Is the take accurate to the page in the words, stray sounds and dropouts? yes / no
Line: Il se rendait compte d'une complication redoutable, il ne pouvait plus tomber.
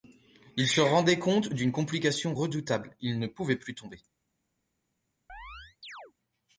no